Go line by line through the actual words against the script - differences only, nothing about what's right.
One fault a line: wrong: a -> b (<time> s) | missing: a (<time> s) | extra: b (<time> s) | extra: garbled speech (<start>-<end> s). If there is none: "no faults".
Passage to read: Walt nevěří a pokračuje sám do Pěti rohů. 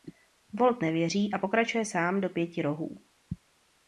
no faults